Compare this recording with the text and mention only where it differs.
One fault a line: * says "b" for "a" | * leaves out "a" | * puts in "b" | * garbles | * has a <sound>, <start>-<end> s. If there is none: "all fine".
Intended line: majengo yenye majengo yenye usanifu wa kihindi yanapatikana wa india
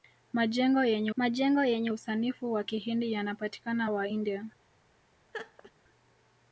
* has a laugh, 5.3-5.7 s